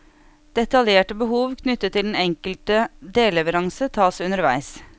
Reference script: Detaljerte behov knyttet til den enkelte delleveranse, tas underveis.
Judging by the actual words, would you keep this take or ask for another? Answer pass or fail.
pass